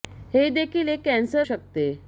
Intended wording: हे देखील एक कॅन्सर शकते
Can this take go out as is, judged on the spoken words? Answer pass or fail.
pass